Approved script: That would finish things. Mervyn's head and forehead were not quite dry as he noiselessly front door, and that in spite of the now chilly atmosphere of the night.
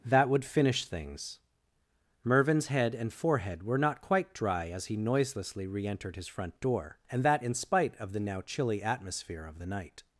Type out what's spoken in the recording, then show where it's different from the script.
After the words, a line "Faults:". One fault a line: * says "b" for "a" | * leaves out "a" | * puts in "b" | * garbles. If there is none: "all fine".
That would finish things. Mervyn's head and forehead were not quite dry as he noiselessly re entered his front door, and that in spite of the now chilly atmosphere of the night.
Faults:
* puts in "re entered his"